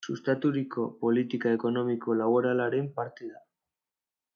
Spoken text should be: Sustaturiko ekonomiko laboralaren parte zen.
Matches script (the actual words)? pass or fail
fail